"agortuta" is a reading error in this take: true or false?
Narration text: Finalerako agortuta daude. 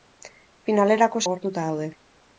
false